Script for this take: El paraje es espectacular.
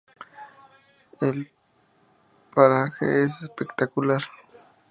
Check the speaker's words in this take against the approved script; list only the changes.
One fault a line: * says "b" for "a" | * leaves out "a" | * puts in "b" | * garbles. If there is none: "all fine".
all fine